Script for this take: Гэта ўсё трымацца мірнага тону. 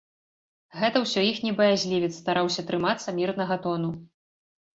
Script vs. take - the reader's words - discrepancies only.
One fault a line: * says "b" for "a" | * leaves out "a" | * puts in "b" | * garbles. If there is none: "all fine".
* puts in "іхні баязлівец стараўся"